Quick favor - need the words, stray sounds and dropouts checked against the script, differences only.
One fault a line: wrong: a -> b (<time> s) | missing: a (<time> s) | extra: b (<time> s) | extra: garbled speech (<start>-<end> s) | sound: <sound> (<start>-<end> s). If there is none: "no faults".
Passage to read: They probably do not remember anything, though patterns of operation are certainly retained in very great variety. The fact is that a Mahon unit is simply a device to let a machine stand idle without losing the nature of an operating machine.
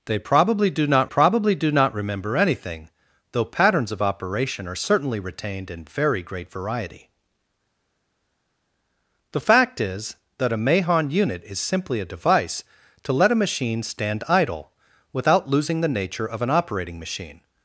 extra: probably do not (1.0 s)